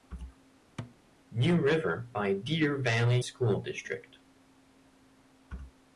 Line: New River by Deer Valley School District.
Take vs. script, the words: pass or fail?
pass